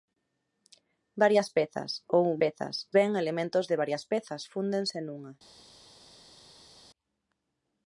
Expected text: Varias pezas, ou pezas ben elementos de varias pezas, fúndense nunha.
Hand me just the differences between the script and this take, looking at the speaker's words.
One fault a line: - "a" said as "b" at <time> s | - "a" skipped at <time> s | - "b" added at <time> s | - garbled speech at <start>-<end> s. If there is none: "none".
none